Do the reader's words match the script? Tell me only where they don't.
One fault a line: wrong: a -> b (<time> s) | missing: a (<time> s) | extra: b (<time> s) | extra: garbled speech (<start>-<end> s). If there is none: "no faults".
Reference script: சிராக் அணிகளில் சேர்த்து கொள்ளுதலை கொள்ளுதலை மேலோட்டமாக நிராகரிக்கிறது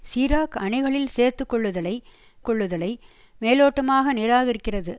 no faults